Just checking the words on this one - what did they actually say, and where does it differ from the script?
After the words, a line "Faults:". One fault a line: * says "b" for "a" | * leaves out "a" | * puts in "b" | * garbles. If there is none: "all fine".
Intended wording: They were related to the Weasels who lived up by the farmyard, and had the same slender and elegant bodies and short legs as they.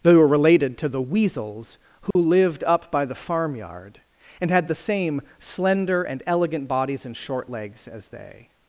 They were related to the Weasels who lived up by the farmyard, and had the same slender and elegant bodies and short legs as they.
Faults:
all fine